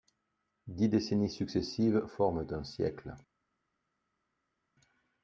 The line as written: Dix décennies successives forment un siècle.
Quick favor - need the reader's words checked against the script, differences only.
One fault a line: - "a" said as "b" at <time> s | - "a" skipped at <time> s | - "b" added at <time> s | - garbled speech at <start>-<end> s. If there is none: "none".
none